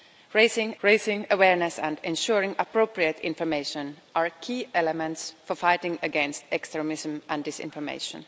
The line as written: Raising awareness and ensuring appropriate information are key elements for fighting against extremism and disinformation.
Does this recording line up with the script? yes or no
no